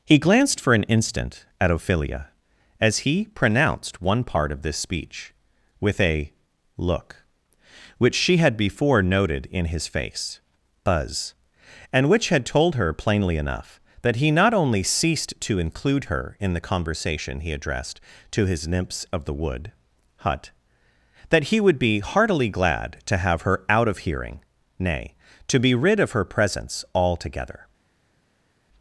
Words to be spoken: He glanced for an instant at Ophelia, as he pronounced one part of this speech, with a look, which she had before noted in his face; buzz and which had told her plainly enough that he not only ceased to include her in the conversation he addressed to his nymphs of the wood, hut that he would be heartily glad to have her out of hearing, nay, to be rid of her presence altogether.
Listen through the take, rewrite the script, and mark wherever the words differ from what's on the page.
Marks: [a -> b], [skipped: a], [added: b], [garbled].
He glanced for an instant at Ophelia, as he pronounced one part of this speech, with a look, which she had before noted in his face; buzz and which had told her plainly enough that he not only ceased to include her in the conversation he addressed to his nymphs of the wood, hut that he would be heartily glad to have her out of hearing, nay, to be rid of her presence altogether.